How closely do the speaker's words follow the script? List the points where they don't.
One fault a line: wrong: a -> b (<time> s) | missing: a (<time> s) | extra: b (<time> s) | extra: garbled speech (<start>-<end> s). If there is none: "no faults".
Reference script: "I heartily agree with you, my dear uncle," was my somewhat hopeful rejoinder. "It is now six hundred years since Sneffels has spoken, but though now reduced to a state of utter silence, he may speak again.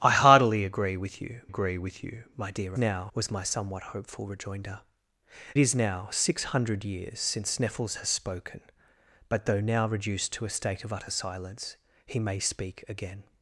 extra: agree with you (1.5 s)
wrong: uncle -> now (2.8 s)
missing: It (4.8 s)